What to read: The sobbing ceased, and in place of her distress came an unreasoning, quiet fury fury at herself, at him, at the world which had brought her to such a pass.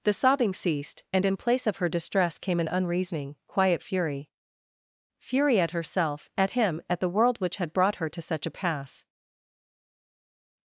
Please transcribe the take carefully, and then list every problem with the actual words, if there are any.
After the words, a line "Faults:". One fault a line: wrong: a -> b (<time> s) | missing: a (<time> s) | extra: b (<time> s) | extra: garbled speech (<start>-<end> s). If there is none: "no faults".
The sobbing ceased, and in place of her distress came an unreasoning, quiet fury fury at herself, at him, at the world which had brought her to such a pass.
Faults:
no faults